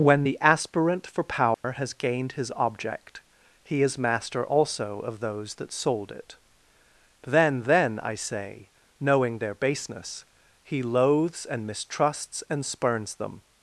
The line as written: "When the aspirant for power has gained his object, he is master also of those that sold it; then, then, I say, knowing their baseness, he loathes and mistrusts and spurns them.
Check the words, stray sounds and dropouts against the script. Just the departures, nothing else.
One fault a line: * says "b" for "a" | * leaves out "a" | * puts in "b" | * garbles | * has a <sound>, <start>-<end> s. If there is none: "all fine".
* has a dropout, 1.5-1.6 s